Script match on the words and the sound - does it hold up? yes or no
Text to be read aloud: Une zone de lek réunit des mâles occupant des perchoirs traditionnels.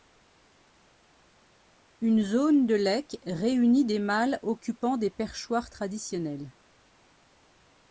yes